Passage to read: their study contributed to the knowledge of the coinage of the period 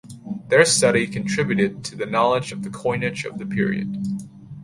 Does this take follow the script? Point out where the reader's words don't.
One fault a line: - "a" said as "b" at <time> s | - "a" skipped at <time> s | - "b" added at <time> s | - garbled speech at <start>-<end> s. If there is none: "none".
none